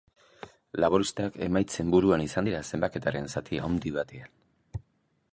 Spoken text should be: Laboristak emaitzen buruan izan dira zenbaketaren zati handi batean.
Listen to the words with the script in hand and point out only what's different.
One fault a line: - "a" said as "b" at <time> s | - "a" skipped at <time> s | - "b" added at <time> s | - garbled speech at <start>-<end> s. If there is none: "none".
none